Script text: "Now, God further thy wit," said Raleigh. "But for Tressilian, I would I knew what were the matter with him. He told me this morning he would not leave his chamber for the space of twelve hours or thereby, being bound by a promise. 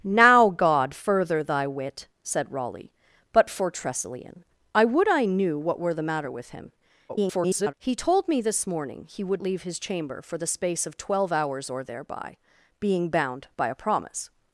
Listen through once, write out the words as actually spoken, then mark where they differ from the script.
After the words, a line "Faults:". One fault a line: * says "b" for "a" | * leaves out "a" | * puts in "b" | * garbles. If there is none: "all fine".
"Now, God further thy wit," said Raleigh. "But for Tressilian, I would I knew what were the matter with him. [garbled] He told me this morning he would leave his chamber for the space of twelve hours or thereby, being bound by a promise.
Faults:
* garbles
* leaves out "not"